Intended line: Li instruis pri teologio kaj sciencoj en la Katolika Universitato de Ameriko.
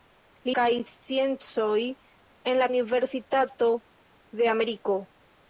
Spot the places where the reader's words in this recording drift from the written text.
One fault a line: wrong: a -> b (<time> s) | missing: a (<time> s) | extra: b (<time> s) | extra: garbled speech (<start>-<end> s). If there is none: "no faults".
missing: instruis pri teologio (0.5 s)
missing: Katolika (2.7 s)